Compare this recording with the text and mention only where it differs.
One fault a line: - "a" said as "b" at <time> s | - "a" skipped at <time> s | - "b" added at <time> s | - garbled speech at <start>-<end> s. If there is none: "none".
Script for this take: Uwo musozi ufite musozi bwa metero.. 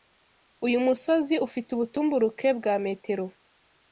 - "Uwo" said as "Uyu" at 0.7 s
- "musozi" said as "ubutumburuke" at 1.7 s